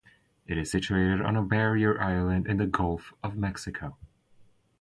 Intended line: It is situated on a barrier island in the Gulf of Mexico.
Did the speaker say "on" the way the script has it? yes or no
yes